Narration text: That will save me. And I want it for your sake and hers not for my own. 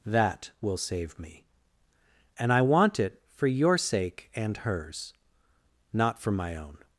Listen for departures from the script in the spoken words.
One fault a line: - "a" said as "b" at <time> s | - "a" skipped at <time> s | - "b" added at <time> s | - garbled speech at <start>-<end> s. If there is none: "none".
none